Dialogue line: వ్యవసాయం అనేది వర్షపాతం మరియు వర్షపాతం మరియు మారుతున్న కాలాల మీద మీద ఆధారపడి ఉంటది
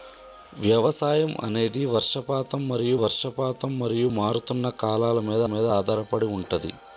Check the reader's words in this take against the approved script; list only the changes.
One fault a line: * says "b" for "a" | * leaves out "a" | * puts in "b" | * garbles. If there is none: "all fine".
all fine